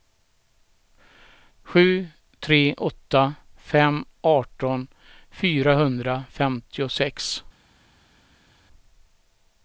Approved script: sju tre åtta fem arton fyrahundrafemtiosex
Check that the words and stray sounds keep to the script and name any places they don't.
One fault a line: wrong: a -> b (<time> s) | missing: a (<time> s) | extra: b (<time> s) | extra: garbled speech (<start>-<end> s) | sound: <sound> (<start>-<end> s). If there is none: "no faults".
no faults